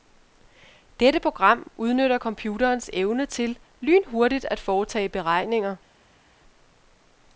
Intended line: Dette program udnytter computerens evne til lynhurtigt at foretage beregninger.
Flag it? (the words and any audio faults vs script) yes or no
no